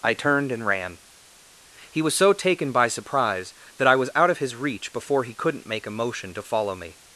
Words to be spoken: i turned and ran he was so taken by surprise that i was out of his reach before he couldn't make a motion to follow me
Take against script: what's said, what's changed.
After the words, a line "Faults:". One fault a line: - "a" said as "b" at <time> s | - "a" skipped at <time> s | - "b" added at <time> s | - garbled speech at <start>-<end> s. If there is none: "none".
i turned and ran he was so taken by surprise that i was out of his reach before he couldn't make a motion to follow me
Faults:
none